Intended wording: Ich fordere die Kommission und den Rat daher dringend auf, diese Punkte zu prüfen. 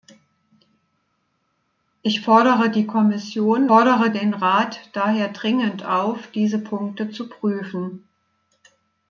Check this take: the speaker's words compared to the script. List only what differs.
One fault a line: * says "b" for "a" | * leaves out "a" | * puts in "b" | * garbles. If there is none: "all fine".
* says "fordere" for "und"